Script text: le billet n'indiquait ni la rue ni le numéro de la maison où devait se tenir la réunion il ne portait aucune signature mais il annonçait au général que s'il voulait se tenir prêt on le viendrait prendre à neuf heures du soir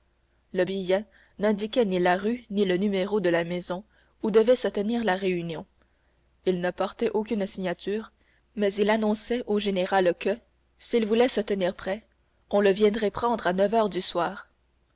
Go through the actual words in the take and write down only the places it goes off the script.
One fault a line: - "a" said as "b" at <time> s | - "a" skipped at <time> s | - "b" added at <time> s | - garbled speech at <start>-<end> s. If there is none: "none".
none